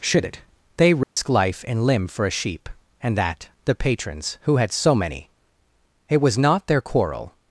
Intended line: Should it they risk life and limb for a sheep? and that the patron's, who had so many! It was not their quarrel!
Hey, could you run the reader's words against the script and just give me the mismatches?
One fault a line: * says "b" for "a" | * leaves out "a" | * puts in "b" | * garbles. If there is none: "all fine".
all fine